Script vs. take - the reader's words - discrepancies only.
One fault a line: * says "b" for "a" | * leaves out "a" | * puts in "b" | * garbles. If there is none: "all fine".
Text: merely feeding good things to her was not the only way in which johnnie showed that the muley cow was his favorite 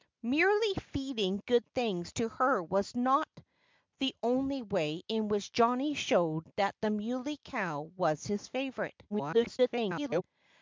* garbles